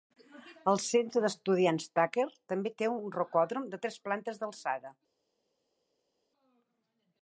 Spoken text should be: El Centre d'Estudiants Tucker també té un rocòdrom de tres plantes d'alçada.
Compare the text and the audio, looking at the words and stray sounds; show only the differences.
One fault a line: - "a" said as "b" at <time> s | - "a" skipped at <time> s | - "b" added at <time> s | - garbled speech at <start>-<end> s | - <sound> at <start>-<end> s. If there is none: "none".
none